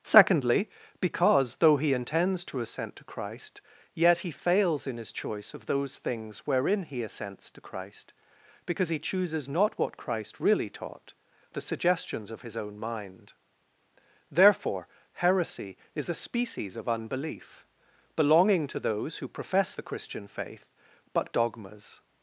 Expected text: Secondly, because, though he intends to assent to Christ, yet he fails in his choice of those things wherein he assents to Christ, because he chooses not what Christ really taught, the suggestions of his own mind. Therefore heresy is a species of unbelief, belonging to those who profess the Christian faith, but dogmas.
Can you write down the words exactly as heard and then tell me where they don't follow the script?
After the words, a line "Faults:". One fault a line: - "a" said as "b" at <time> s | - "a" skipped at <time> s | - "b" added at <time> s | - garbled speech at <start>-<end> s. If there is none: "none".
Secondly, because, though he intends to assent to Christ, yet he fails in his choice of those things wherein he assents to Christ, because he chooses not what Christ really taught, the suggestions of his own mind. Therefore heresy is a species of unbelief, belonging to those who profess the Christian faith, but dogmas.
Faults:
none